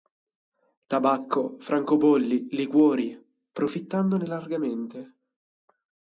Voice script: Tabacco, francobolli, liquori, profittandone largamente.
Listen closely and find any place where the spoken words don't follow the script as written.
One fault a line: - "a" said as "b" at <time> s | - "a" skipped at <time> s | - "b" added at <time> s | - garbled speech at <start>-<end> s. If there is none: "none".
none